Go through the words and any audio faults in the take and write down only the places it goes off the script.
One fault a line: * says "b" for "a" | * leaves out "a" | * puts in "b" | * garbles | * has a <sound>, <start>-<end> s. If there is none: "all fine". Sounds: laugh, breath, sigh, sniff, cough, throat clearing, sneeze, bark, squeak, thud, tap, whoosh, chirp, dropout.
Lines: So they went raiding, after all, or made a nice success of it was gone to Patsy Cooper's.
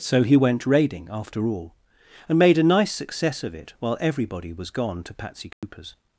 * says "he" for "they"
* says "and" for "or"
* puts in "while everybody"
* has a dropout, 5.5-5.6 s